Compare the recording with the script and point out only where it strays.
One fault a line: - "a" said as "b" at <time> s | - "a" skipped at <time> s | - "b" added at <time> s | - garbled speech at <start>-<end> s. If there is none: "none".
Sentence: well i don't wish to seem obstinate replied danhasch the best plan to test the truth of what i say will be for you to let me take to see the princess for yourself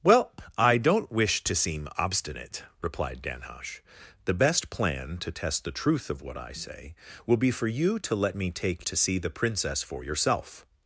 none